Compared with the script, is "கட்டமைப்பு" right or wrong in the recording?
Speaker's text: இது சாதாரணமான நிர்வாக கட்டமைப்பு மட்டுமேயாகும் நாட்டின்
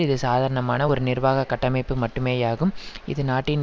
right